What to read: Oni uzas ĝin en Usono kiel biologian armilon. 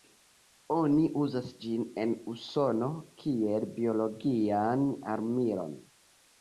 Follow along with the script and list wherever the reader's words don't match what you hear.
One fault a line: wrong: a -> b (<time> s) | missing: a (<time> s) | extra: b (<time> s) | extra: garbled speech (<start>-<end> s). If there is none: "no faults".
no faults